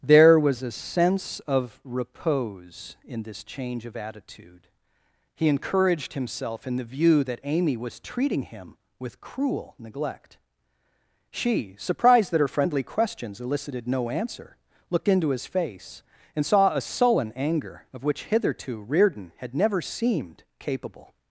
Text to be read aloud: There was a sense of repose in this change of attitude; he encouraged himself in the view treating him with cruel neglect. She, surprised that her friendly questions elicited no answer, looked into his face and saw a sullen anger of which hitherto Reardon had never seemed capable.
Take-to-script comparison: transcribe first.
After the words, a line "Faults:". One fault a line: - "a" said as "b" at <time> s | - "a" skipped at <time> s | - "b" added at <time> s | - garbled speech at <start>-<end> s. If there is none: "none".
There was a sense of repose in this change of attitude; he encouraged himself in the view that Amy was treating him with cruel neglect. She, surprised that her friendly questions elicited no answer, looked into his face and saw a sullen anger of which hitherto Reardon had never seemed capable.
Faults:
- "that Amy was" added at 7.2 s